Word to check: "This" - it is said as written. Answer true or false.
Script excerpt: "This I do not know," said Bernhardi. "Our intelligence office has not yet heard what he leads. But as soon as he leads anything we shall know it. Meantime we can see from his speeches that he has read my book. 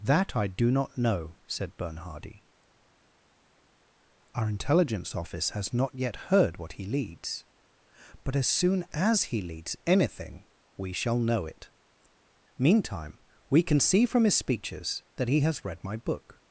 false